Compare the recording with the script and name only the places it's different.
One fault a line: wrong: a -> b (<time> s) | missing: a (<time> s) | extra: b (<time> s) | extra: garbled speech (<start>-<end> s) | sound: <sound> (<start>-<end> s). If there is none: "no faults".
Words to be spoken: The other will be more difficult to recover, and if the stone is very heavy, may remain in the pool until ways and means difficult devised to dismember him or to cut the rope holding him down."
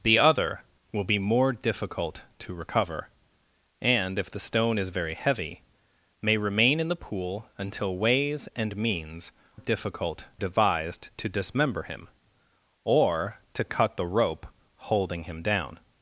no faults